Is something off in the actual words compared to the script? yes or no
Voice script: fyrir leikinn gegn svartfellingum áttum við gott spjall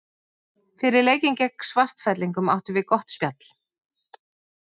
no